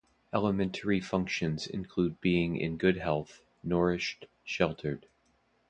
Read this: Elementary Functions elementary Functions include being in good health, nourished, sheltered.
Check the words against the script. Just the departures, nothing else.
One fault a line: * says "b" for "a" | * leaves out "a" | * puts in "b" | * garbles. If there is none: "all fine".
* leaves out "elementary Functions"